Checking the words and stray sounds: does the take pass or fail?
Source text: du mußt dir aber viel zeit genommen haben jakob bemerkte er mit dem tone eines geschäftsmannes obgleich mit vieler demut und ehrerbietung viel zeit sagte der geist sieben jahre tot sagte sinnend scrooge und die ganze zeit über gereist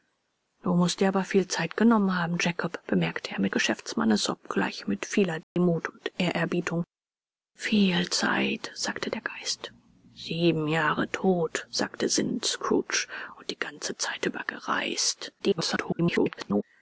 fail